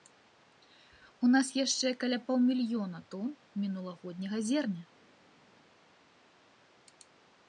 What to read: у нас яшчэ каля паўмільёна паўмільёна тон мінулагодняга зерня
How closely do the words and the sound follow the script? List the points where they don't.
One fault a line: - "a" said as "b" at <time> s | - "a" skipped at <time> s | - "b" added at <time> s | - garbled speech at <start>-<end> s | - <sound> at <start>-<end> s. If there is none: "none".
- "паўмільёна" skipped at 3.0 s